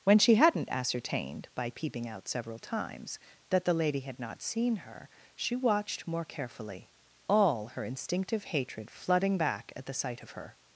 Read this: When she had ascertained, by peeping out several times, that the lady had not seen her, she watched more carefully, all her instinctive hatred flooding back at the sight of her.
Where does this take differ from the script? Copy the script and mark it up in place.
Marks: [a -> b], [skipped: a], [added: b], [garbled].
When she [had -> hadn't] ascertained, by peeping out several times, that the lady had not seen her, she watched more carefully, all her instinctive hatred flooding back at the sight of her.